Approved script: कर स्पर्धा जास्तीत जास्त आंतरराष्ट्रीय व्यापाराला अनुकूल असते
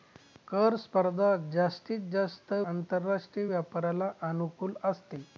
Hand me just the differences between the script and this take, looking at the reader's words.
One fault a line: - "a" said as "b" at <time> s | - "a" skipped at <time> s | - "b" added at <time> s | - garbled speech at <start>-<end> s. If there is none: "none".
none